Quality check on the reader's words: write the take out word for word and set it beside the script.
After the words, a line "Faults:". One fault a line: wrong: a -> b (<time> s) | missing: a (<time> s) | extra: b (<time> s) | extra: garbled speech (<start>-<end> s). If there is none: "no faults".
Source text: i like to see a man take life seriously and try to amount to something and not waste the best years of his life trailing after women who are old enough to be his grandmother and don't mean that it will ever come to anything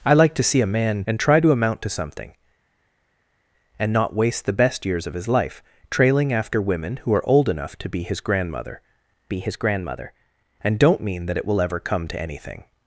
i like to see a man and try to amount to something and not waste the best years of his life trailing after women who are old enough to be his grandmother be his grandmother and don't mean that it will ever come to anything
Faults:
missing: take life seriously (1.1 s)
extra: be his grandmother (9.3 s)